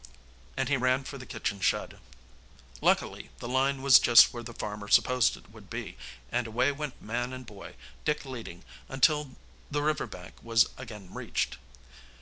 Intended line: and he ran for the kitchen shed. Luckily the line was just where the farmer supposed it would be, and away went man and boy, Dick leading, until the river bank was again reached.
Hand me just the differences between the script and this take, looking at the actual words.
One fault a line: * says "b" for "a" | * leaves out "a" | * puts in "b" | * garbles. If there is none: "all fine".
all fine